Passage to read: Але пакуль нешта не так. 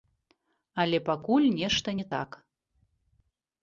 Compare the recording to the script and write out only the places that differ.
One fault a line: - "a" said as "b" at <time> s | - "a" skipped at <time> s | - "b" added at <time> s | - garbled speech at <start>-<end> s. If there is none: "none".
none